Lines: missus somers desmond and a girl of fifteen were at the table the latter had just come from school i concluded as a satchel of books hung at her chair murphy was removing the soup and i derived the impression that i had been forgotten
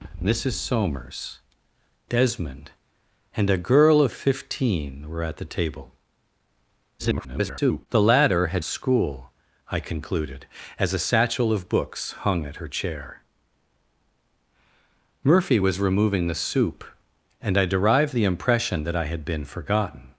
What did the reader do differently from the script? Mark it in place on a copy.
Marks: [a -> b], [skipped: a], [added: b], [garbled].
missus somers desmond and a girl of fifteen were at the table [garbled] the latter had [skipped: just come from] school i concluded as a satchel of books hung at her chair murphy was removing the soup and i derived the impression that i had been forgotten